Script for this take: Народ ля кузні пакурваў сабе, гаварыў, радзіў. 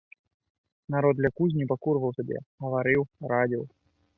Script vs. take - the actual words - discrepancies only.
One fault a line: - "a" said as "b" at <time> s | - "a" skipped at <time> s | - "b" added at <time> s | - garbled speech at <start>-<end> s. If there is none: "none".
none